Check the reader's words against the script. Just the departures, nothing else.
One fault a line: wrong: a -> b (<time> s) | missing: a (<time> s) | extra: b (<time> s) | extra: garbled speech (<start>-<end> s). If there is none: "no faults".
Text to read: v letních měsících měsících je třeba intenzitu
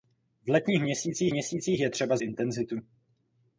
no faults